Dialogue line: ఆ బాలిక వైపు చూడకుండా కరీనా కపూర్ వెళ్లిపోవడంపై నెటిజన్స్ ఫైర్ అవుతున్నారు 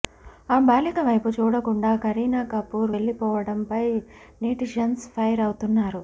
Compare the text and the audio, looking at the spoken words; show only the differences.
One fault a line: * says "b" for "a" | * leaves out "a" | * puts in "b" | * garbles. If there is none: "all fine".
all fine